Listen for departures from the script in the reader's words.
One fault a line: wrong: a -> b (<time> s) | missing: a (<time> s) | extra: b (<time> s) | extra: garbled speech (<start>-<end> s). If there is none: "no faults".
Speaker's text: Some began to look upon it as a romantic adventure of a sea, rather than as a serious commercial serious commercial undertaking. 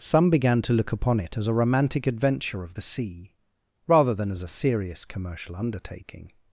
wrong: a -> the (2.7 s)
missing: serious commercial (5.6 s)